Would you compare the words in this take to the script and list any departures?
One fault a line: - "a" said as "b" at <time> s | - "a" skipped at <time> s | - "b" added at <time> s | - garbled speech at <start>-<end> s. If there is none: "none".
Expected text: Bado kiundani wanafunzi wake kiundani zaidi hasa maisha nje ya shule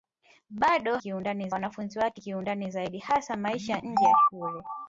none